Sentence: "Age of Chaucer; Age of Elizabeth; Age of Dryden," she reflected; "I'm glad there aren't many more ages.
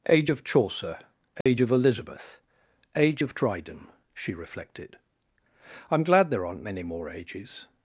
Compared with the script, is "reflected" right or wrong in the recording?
right